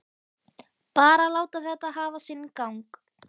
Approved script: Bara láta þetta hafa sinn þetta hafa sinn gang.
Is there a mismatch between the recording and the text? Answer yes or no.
yes